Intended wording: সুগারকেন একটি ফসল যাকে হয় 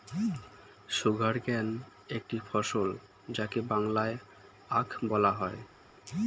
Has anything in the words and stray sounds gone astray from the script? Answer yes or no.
yes